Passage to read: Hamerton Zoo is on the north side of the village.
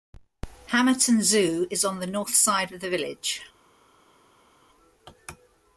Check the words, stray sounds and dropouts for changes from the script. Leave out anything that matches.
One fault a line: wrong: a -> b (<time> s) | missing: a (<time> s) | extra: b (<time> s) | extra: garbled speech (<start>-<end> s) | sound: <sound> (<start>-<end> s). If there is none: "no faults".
no faults